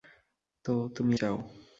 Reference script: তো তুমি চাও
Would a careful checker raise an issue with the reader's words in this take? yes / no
no